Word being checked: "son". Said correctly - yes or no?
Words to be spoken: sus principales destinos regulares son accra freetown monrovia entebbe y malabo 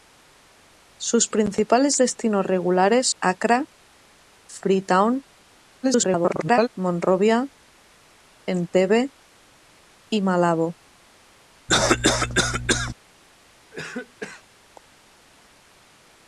no